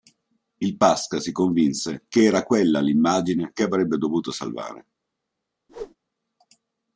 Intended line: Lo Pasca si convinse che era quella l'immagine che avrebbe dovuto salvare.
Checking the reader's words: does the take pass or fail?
fail